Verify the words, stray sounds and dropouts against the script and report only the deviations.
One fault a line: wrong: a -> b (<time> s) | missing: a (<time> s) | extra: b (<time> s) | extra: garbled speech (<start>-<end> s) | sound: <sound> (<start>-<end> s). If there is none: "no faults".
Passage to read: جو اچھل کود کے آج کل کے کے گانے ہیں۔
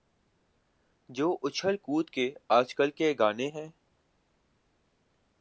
missing: کے (3.1 s)